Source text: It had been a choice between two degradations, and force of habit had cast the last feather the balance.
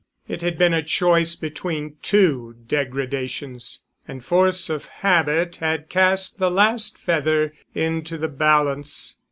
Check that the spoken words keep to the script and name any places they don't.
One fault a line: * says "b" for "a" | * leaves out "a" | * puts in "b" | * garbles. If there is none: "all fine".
* puts in "into"